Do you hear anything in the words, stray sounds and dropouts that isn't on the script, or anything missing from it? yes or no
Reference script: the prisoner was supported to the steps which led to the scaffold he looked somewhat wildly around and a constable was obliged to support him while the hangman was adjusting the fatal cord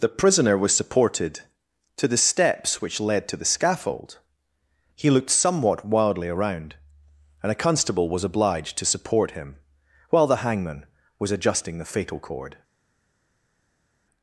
no